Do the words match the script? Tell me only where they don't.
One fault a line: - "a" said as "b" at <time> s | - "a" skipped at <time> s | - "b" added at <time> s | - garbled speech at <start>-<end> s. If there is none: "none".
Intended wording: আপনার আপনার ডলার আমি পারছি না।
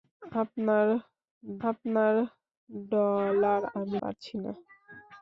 none